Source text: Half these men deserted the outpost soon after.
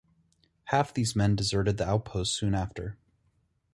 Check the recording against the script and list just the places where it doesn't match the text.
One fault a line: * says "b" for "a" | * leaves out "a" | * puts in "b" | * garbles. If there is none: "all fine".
all fine